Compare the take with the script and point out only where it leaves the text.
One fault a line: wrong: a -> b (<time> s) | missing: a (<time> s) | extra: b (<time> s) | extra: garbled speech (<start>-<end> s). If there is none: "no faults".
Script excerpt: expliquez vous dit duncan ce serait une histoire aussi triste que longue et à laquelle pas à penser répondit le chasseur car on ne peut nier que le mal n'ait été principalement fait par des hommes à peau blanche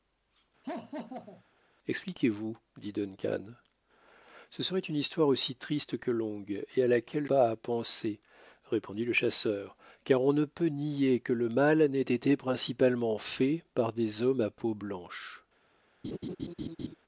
no faults